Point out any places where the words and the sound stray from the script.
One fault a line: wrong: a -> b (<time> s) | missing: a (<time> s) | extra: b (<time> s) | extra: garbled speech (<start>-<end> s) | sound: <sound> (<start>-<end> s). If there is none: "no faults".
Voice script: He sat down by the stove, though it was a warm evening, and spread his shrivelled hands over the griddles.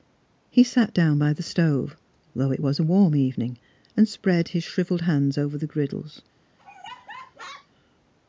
sound: laugh (6.6-7.7 s)